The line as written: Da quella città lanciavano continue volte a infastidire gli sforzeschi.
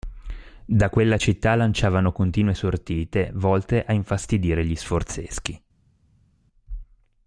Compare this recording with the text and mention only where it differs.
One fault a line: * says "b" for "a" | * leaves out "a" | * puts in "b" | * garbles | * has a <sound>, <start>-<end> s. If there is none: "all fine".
* puts in "sortite"